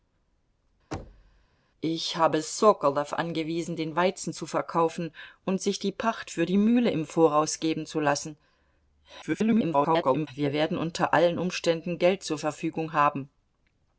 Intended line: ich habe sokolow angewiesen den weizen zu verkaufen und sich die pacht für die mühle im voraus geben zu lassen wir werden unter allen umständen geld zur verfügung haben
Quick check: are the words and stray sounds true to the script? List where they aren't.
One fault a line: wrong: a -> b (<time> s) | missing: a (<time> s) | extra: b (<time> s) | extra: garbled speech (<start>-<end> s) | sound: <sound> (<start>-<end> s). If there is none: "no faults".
sound: thud (0.9-1.5 s)
extra: garbled speech (9.2-10.3 s)